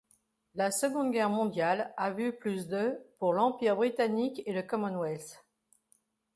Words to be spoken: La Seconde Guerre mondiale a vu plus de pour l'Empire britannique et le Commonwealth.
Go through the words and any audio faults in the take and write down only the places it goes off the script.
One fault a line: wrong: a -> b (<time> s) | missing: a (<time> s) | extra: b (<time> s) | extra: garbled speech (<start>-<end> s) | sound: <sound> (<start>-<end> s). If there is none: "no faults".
no faults